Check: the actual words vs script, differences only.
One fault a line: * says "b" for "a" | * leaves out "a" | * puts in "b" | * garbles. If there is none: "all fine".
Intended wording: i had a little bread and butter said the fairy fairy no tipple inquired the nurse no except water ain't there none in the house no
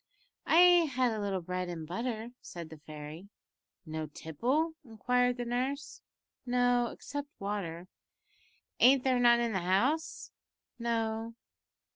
* leaves out "fairy"